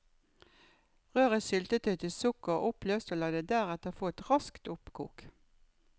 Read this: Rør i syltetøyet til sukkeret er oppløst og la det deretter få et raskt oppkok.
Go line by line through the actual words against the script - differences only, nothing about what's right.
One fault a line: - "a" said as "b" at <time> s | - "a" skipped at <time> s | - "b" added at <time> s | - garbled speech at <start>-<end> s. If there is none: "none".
none